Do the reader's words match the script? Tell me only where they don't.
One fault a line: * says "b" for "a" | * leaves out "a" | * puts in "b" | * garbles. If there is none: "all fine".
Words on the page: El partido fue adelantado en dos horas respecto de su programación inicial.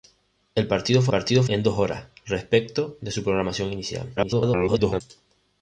* says "partido" for "adelantado"
* garbles